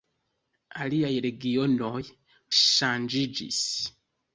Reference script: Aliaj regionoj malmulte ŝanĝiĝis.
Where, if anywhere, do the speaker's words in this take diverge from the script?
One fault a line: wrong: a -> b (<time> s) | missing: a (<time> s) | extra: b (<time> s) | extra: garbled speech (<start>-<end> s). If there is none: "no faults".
missing: malmulte (2.0 s)